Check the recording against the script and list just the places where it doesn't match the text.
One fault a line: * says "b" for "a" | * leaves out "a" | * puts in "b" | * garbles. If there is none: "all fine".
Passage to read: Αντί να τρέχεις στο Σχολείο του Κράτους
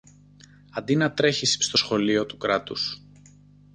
all fine